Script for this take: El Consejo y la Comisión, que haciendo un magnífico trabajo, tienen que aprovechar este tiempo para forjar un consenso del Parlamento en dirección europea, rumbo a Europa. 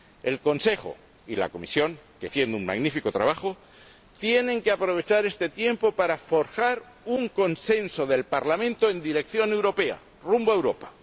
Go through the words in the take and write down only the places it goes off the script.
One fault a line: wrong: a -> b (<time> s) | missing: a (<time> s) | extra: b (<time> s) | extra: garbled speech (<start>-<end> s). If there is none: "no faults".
no faults